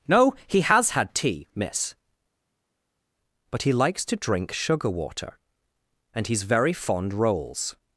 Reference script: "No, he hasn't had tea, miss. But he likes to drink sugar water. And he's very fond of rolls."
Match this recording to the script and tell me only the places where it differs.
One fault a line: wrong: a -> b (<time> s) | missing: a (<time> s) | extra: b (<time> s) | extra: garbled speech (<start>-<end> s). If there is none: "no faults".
wrong: hasn't -> has (0.6 s)
missing: of (7.1 s)